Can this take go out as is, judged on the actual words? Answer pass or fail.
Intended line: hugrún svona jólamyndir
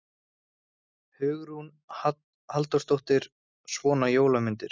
fail